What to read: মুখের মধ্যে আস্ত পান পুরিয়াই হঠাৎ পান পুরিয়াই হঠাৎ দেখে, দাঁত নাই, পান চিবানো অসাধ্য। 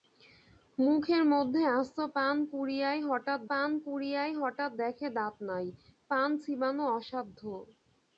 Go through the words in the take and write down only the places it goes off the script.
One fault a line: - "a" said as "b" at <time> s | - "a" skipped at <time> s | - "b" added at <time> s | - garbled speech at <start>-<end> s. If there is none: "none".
none